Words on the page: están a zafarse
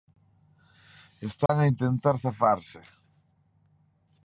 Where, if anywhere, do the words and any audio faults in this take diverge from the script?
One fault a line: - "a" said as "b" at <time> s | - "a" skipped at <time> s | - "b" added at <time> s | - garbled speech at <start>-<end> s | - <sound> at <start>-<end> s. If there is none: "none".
- dropout at 1.5-1.5 s
- "intentar" added at 1.7 s